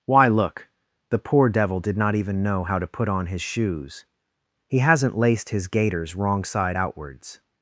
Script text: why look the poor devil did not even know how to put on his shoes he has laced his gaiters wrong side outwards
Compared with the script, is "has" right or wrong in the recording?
wrong